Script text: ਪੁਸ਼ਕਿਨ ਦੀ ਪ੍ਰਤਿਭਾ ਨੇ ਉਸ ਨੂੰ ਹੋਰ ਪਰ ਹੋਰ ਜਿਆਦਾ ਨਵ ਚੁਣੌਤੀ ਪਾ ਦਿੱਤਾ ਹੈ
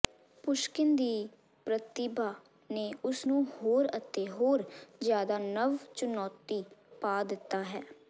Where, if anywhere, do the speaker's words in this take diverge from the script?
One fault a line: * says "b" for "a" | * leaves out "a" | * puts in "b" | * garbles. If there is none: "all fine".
* says "ਅਤੇ" for "ਪਰ"